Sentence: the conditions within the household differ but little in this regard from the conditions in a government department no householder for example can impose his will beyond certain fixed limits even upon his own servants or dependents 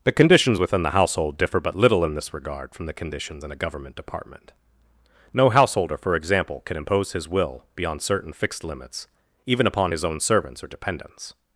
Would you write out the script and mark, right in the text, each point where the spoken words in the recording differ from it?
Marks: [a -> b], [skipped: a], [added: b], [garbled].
the conditions within the household differ but little in this regard from the conditions in a government department no householder for example can impose his will beyond certain fixed limits even upon his own servants or dependents